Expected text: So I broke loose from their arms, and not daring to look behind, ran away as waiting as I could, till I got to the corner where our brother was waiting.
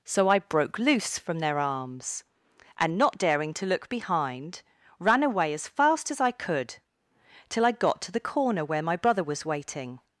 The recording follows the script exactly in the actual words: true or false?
false